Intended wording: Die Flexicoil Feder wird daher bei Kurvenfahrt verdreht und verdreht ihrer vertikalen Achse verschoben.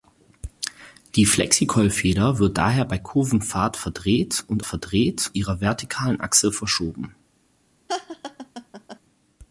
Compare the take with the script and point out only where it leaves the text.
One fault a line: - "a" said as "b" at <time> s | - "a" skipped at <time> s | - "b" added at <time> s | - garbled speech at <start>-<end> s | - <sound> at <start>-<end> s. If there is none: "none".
- laugh at 7.9-9.0 s